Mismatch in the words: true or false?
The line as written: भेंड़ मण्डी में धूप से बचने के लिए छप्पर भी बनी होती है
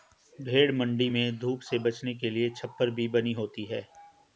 false